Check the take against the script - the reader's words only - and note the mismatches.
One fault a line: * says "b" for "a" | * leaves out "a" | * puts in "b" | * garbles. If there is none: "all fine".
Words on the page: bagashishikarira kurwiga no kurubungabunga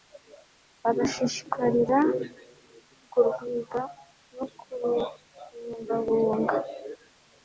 all fine